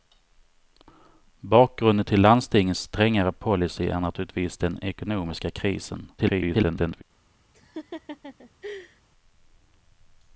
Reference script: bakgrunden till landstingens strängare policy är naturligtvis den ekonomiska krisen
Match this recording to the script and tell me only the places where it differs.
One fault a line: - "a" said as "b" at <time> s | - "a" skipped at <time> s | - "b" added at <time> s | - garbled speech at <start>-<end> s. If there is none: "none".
- garbled speech at 6.2-7.0 s